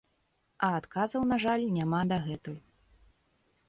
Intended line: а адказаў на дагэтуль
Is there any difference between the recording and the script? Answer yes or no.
yes